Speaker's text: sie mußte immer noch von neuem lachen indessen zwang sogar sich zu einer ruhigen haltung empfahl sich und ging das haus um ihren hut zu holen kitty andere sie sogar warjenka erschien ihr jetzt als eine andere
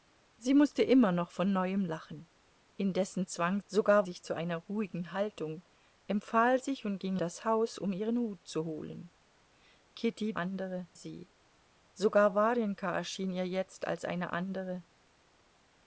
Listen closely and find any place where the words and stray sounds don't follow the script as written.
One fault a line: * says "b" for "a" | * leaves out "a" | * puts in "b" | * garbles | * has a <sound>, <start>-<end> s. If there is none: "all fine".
all fine